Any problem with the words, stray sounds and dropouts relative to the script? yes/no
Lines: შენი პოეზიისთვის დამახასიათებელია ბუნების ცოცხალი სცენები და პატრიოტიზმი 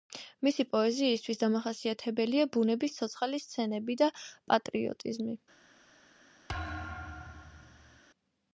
yes